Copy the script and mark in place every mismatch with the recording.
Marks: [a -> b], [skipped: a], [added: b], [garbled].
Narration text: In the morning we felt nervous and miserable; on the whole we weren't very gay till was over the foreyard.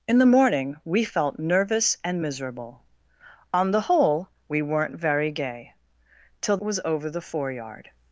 In the morning we felt nervous and miserable; on the whole we weren't very gay till was over the foreyard.